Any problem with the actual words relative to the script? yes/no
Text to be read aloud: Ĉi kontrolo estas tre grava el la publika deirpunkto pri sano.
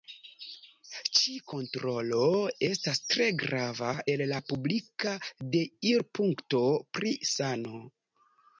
no